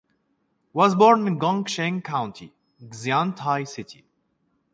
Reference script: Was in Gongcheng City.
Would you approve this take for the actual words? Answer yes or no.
no